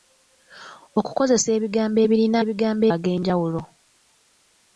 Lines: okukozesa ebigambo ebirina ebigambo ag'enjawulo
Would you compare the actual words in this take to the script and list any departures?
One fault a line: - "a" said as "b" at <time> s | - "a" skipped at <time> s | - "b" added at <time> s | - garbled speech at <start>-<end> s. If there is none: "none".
none